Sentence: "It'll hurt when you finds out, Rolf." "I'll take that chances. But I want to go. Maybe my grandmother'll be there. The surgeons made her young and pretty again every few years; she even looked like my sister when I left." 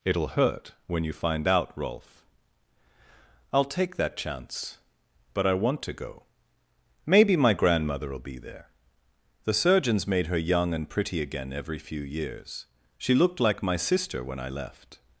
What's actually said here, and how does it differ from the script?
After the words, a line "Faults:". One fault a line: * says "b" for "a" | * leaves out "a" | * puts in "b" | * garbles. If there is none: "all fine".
"It'll hurt when you find out, Rolf." "I'll take that chance. But I want to go. Maybe my grandmother'll be there. The surgeons made her young and pretty again every few years; she looked like my sister when I left."
Faults:
* says "find" for "finds"
* says "chance" for "chances"
* leaves out "even"